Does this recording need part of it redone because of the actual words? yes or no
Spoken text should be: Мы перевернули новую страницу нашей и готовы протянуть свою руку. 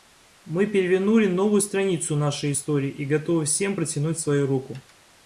yes